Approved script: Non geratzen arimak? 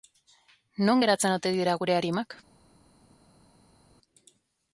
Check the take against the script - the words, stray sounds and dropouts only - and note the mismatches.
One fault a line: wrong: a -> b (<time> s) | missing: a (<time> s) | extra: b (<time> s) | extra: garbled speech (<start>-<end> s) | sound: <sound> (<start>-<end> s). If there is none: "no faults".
extra: ote dira gure (1.4 s)